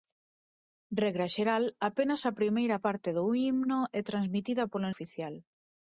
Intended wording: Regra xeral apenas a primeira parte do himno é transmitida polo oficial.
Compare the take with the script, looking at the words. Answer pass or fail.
pass